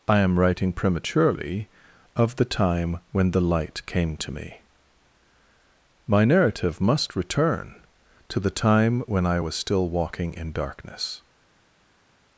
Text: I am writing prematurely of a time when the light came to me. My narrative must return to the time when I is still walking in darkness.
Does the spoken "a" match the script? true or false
false